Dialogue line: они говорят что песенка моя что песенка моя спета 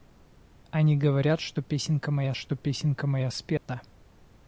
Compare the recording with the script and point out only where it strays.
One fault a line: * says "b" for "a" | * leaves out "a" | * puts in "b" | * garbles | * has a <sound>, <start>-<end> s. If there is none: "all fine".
* has a dropout, 3.6-3.7 s